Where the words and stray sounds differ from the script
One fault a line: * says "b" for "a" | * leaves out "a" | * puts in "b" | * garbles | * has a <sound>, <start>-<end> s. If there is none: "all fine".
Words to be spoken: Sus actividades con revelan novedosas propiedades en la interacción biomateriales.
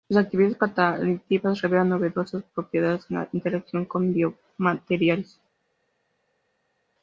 * says "catalíticas" for "con"
* puts in "con"